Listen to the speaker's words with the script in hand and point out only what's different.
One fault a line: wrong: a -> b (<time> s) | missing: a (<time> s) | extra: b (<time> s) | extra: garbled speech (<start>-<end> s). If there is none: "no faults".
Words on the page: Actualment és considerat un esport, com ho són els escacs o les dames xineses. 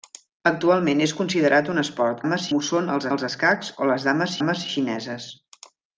wrong: com -> dames (2.2 s)
extra: els (3.1 s)
extra: dames (4.4 s)